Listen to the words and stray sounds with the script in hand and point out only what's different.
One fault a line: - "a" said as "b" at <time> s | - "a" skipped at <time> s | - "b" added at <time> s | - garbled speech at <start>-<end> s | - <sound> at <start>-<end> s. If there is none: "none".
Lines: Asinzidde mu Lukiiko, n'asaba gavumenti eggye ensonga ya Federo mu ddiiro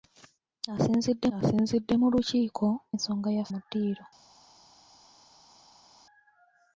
- "asinzidde" added at 1.4 s
- "n'asaba gavumenti eggye" skipped at 2.7 s
- "Federo" skipped at 3.5 s